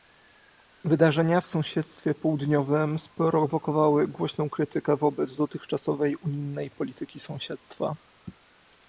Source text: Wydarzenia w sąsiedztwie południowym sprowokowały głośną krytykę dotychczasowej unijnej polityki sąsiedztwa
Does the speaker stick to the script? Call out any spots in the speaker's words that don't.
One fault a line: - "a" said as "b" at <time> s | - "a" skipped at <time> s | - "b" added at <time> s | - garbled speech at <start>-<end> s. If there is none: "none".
- "wobec" added at 5.0 s